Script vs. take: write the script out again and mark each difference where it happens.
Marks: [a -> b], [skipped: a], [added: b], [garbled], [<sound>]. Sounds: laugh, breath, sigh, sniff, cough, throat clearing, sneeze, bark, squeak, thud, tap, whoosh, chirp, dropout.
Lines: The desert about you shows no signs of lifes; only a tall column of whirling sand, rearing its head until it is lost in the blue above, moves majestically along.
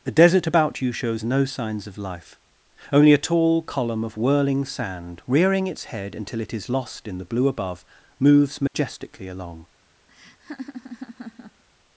The desert about you shows no signs of [lifes; -> life] only a tall column of whirling sand, rearing its head until it is lost in the blue above, moves majestically [dropout] along. [laugh]